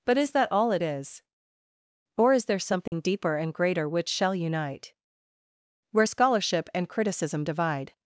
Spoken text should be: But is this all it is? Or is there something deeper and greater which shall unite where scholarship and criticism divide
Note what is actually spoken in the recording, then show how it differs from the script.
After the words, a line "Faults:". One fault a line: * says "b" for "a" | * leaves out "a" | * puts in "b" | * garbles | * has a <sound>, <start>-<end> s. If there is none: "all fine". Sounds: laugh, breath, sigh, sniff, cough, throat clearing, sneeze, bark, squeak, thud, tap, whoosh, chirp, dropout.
But is that all it is? Or is there something deeper and greater which shall unite where scholarship and criticism divide
Faults:
* says "that" for "this"
* has a dropout, 2.9-2.9 s